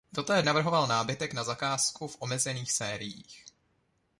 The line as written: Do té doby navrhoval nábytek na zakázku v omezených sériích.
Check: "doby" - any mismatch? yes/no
yes